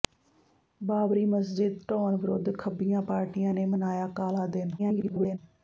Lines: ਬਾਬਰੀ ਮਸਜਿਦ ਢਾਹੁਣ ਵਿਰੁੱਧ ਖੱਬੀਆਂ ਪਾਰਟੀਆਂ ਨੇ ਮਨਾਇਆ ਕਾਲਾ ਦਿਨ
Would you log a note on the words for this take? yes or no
yes